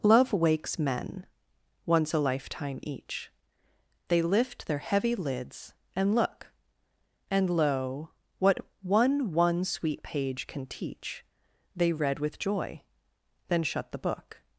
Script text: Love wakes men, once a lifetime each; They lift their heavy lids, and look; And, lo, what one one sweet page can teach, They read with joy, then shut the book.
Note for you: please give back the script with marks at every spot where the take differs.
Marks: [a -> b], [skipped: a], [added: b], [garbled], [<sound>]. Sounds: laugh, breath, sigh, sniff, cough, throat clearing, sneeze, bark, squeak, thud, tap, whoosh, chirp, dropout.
Love wakes men, once a lifetime each; They lift their heavy lids, and look; And, lo, what one one sweet page can teach, They read with joy, then shut the book.